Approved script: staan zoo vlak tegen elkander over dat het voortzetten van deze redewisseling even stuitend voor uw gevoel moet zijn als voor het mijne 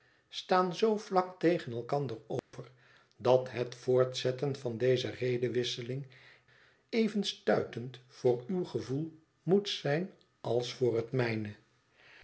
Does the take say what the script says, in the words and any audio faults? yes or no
no